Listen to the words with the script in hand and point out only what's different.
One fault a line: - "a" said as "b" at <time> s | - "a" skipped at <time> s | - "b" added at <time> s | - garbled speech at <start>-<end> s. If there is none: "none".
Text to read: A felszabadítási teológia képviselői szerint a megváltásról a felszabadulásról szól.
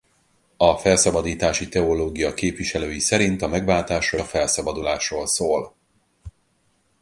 none